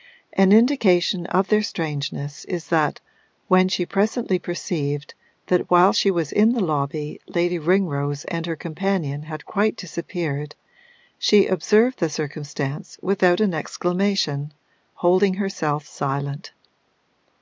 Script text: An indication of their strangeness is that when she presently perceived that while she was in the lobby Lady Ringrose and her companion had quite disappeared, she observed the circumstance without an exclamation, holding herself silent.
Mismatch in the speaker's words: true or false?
false